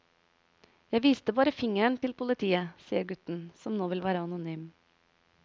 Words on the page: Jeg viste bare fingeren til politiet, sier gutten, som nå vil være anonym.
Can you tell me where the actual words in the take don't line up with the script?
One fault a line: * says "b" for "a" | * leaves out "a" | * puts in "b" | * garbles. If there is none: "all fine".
all fine